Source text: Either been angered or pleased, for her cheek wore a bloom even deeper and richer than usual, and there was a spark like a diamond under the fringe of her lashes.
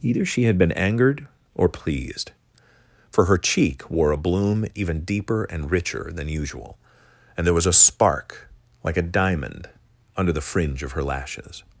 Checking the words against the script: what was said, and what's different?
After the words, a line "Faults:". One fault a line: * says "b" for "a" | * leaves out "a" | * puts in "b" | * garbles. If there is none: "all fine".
Either she had been angered or pleased, for her cheek wore a bloom even deeper and richer than usual, and there was a spark like a diamond under the fringe of her lashes.
Faults:
* puts in "she had"